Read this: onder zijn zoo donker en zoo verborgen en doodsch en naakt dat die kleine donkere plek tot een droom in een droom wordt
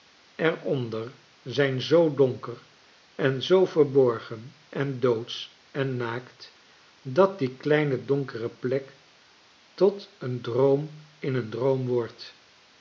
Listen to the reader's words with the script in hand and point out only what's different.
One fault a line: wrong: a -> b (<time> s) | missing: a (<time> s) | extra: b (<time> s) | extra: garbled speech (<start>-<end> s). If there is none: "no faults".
no faults